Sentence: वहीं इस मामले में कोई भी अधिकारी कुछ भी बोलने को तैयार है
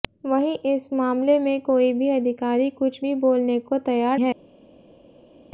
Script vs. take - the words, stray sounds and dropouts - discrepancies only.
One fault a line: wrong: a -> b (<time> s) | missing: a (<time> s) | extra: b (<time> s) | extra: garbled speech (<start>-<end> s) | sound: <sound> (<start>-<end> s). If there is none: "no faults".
no faults